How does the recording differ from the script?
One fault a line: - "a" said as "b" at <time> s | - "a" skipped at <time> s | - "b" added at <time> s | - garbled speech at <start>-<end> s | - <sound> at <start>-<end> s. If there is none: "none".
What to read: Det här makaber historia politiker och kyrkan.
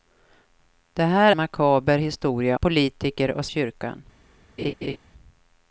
- laugh at 4.6-5.0 s